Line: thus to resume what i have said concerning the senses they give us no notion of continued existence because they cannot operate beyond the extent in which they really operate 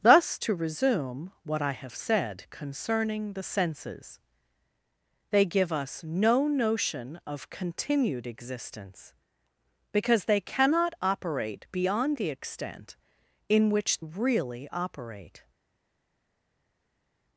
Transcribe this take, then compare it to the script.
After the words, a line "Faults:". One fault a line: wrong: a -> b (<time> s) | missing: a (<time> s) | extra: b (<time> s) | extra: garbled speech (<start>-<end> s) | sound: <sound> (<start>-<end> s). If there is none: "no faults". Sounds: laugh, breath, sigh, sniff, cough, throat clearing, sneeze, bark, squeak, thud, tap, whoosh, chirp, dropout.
thus to resume what i have said concerning the senses they give us no notion of continued existence because they cannot operate beyond the extent in which really operate
Faults:
missing: they (14.0 s)